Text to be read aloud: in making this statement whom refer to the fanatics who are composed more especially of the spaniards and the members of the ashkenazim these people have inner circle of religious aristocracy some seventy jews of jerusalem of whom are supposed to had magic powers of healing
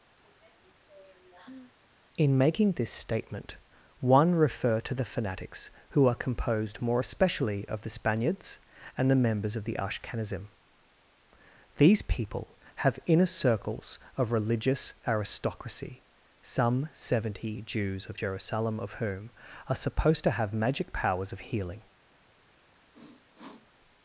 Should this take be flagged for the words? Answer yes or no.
yes